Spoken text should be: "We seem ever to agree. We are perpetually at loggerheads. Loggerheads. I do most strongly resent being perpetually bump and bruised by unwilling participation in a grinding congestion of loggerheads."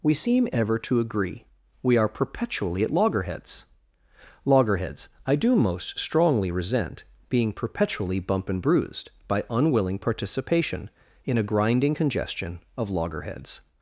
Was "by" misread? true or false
false